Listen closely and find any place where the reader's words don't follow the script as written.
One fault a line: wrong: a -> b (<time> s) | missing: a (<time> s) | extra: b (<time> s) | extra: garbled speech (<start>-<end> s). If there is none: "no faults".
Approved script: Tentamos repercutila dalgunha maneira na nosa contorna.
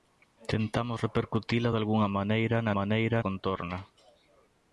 wrong: nosa -> maneira (2.8 s)